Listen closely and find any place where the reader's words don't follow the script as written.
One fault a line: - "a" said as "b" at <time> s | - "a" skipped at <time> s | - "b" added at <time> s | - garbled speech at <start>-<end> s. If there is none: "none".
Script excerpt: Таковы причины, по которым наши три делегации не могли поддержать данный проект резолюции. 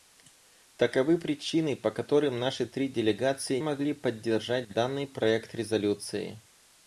- "не" skipped at 3.6 s